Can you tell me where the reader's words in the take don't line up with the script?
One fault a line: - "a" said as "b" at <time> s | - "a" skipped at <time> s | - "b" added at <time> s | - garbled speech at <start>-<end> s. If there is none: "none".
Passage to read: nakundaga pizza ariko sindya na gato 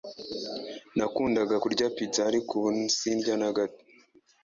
- "kurya" added at 1.6 s
- "ubu" added at 2.6 s